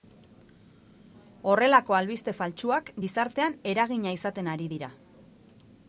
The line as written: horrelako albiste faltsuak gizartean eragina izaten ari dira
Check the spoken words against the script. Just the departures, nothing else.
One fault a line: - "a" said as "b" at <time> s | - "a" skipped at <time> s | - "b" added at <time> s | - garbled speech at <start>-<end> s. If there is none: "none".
none